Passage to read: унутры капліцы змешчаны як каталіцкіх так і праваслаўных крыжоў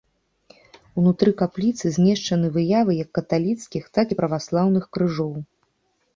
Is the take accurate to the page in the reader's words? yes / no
no